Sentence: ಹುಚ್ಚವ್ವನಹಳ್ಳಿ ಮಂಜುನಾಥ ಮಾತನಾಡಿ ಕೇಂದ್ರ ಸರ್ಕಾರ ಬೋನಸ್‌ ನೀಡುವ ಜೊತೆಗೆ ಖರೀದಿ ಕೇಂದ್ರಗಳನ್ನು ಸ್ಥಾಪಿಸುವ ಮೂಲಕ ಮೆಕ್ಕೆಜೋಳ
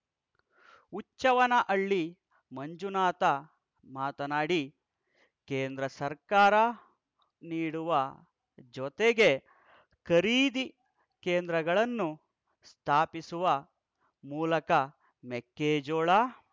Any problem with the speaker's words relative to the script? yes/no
yes